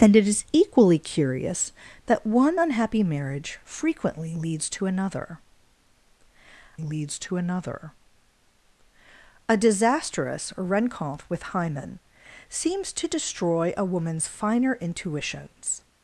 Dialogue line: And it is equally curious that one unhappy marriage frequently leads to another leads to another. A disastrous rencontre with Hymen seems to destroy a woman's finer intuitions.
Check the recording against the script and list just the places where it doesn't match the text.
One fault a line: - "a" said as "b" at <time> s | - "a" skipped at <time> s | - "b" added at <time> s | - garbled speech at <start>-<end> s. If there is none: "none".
none